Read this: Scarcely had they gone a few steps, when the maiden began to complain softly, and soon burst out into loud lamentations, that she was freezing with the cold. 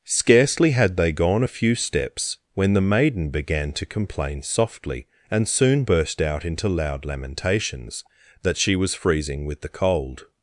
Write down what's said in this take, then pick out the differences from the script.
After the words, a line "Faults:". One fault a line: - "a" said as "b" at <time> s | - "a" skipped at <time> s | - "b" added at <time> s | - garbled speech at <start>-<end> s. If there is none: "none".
Scarcely had they gone a few steps, when the maiden began to complain softly, and soon burst out into loud lamentations, that she was freezing with the cold.
Faults:
none